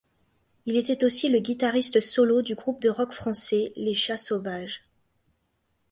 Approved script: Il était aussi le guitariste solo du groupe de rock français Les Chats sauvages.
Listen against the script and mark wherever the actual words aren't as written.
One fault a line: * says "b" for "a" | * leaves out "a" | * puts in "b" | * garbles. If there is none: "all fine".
all fine